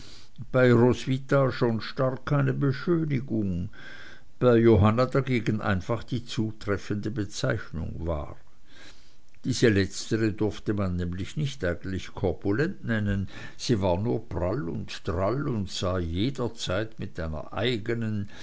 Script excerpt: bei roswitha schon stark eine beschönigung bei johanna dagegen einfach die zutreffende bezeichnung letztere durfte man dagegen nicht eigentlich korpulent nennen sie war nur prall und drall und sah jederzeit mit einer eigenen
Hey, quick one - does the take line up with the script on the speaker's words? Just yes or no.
no